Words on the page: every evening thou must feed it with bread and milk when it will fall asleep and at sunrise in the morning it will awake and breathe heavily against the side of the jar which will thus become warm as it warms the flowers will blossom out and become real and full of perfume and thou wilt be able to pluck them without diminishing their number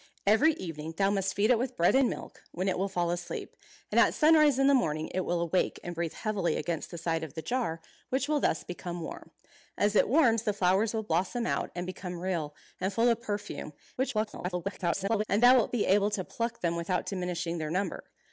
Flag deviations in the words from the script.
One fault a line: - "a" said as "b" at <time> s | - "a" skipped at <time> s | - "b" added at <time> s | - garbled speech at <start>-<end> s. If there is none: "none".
- garbled speech at 14.0-15.2 s